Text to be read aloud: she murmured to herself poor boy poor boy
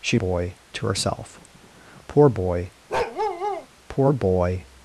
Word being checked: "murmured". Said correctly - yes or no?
no